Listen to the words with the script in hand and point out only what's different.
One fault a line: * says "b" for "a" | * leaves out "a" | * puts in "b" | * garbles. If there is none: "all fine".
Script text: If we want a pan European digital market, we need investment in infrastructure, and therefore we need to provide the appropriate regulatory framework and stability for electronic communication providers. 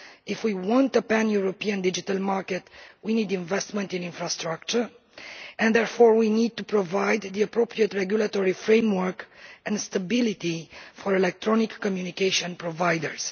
all fine